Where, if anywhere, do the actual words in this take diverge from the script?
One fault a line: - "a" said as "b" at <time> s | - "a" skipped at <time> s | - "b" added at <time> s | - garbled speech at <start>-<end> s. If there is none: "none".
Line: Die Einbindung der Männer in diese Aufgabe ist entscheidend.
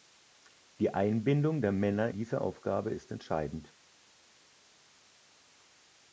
- "in" skipped at 2.1 s